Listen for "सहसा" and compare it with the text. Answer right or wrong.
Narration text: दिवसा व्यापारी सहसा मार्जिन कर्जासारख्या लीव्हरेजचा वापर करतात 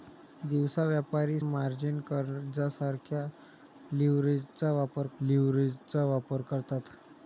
wrong